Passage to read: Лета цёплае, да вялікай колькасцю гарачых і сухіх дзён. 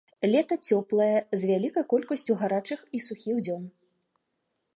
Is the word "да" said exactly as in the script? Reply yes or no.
no